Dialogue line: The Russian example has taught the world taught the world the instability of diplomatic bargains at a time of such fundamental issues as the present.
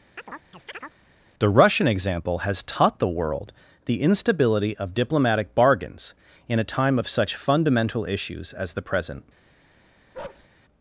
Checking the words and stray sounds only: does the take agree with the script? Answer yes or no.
no